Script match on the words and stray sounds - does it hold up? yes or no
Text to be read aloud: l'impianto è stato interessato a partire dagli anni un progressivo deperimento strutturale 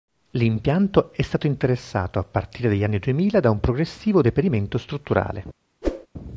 no